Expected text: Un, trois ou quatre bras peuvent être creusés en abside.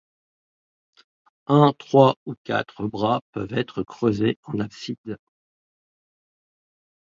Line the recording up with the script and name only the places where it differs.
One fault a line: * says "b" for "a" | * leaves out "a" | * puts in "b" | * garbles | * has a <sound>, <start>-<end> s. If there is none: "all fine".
all fine